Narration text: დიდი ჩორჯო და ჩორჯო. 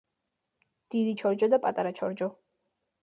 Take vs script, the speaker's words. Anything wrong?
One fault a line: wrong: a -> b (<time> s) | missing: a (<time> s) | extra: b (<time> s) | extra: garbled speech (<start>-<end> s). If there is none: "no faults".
extra: პატარა (1.7 s)